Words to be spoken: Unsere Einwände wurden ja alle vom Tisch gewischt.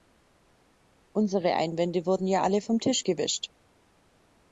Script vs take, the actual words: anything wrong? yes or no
no